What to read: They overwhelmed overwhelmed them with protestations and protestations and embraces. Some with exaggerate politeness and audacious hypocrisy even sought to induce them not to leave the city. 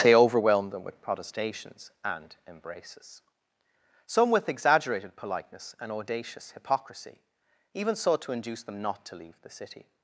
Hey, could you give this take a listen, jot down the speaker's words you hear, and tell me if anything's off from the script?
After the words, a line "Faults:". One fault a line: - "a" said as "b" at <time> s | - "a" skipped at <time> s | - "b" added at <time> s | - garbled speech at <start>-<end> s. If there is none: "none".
They overwhelmed them with protestations and embraces. Some with exaggerated politeness and audacious hypocrisy even sought to induce them not to leave the city.
Faults:
- "overwhelmed" skipped at 0.7 s
- "protestations and" skipped at 2.4 s
- "exaggerate" said as "exaggerated" at 4.5 s